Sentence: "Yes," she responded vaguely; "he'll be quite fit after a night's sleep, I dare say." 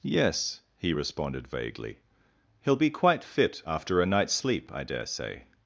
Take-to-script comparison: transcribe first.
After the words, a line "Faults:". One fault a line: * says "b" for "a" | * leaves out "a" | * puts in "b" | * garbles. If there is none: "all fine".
"Yes," he responded vaguely; "he'll be quite fit after a night's sleep, I dare say."
Faults:
* says "he" for "she"